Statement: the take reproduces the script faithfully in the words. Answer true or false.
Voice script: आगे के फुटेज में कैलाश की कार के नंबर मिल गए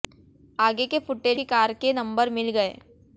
false